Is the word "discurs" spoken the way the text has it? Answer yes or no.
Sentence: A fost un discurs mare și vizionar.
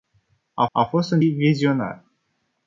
no